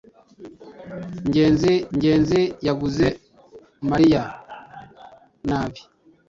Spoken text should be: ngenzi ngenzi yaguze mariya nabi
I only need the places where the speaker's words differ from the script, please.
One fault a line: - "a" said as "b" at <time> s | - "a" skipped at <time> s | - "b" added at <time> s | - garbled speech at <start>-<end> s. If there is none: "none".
none